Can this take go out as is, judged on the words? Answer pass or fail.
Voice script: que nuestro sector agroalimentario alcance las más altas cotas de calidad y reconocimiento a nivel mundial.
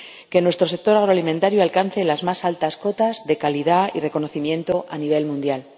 pass